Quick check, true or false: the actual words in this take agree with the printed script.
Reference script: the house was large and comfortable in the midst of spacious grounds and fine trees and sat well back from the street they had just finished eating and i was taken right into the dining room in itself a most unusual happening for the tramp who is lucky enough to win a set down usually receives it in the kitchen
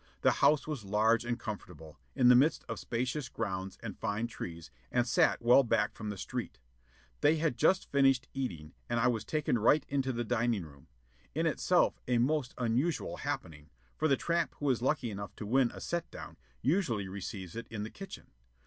true